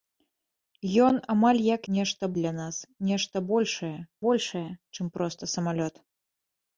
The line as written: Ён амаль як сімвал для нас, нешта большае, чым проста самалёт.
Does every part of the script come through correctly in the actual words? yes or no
no